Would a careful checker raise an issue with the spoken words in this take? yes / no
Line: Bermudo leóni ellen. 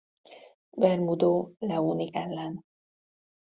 no